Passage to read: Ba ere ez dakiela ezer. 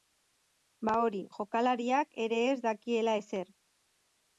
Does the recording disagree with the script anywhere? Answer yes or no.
yes